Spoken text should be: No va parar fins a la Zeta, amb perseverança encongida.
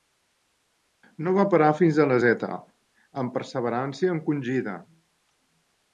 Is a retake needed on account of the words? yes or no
no